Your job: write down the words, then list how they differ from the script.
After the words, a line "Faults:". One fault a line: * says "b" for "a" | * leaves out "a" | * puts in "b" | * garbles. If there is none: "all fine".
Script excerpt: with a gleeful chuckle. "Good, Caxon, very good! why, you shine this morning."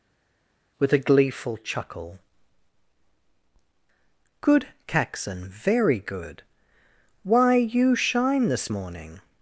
with a gleeful chuckle. "Good, Caxon, very good! why, you shine this morning."
Faults:
all fine